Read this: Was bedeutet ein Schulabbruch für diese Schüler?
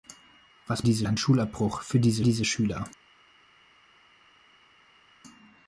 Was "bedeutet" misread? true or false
true